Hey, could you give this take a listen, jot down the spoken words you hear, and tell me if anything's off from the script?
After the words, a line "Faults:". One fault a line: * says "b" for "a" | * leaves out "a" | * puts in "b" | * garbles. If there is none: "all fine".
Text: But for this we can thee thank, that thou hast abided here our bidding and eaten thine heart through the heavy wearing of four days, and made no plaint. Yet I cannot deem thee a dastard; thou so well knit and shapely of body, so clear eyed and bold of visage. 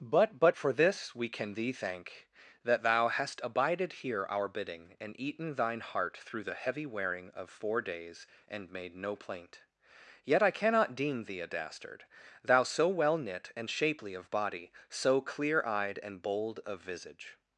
But but for this we can thee thank, that thou hast abided here our bidding and eaten thine heart through the heavy wearing of four days, and made no plaint. Yet I cannot deem thee a dastard; thou so well knit and shapely of body, so clear eyed and bold of visage.
Faults:
* puts in "but"